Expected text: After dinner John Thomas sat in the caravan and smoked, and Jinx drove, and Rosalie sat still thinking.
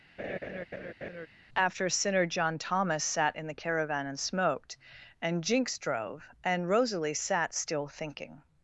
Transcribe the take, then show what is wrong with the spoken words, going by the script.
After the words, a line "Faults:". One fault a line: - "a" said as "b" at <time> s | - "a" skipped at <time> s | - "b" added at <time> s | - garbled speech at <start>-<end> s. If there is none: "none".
After sinner John Thomas sat in the caravan and smoked, and Jinx drove, and Rosalie sat still thinking.
Faults:
- "dinner" said as "sinner" at 1.9 s